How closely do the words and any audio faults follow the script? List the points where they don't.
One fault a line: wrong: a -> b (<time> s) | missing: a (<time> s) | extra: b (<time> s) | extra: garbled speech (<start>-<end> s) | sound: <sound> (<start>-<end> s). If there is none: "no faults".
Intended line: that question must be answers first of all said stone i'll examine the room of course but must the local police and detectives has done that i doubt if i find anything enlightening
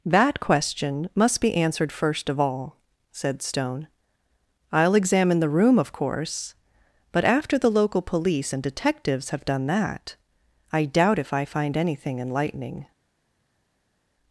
wrong: answers -> answered (1.5 s)
wrong: must -> after (7.2 s)
wrong: has -> have (9.3 s)